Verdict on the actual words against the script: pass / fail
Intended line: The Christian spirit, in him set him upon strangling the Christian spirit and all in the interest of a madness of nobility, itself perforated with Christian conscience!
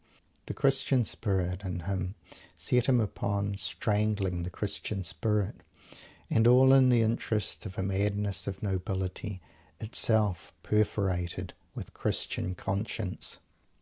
pass